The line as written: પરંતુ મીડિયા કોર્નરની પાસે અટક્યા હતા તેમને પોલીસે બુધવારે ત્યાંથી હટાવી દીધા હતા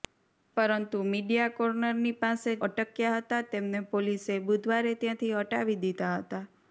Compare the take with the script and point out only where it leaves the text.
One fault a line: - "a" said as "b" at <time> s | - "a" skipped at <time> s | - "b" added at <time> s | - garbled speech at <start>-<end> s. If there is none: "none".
none